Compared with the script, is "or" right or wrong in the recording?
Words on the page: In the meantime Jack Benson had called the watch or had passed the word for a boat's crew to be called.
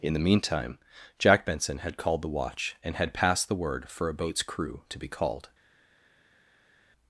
wrong